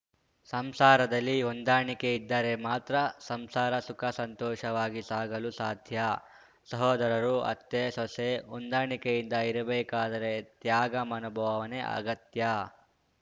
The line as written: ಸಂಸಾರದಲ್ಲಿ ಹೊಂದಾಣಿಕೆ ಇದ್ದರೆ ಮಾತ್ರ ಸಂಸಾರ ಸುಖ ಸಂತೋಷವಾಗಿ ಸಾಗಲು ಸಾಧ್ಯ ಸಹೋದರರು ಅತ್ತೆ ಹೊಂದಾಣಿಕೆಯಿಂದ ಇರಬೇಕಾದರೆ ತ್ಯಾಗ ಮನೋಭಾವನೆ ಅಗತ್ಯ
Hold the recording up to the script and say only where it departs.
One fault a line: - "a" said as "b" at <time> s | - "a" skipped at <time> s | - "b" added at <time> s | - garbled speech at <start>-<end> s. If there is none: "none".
- "ಸೊಸೆ" added at 7.9 s